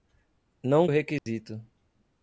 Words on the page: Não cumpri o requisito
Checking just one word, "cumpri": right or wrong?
wrong